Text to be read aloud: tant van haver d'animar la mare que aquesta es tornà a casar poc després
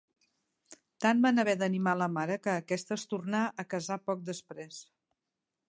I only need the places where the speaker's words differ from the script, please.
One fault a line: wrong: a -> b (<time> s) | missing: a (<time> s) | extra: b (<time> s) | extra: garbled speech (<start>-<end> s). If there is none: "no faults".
no faults